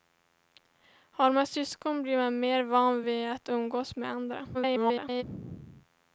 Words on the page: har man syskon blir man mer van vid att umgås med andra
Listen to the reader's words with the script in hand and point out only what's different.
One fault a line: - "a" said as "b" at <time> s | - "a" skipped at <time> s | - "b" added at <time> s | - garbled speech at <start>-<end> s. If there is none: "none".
- garbled speech at 4.5-5.2 s